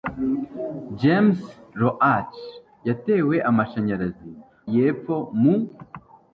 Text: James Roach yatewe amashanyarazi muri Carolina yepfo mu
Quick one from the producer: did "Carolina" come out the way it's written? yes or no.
no